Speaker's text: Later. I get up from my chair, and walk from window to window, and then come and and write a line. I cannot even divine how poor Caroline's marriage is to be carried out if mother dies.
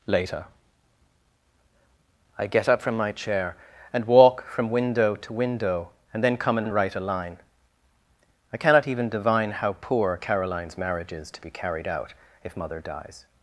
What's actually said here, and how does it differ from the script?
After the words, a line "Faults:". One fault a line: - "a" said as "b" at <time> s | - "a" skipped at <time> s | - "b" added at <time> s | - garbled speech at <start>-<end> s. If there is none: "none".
Later. I get up from my chair, and walk from window to window, and then come and and write a line. I cannot even divine how poor Caroline's marriage is to be carried out if mother dies.
Faults:
none